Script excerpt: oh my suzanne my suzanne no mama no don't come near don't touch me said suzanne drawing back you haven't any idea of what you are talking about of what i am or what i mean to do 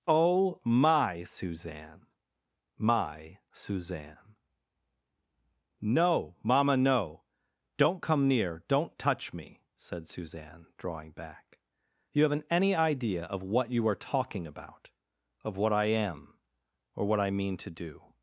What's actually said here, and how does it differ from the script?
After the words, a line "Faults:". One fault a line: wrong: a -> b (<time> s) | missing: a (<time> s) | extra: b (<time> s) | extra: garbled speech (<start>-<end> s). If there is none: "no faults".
oh my suzanne my suzanne no mama no don't come near don't touch me said suzanne drawing back you haven't any idea of what you are talking about of what i am or what i mean to do
Faults:
no faults